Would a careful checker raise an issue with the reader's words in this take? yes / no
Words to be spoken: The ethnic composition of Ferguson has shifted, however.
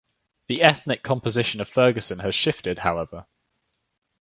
no